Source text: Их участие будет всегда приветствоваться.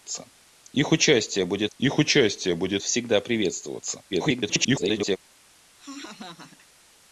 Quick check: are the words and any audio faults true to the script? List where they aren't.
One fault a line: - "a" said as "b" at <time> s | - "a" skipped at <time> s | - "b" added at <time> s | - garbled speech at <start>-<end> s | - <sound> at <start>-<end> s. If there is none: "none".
- "их участие будет" added at 1.8 s
- garbled speech at 4.1-5.2 s
- laugh at 5.8-6.7 s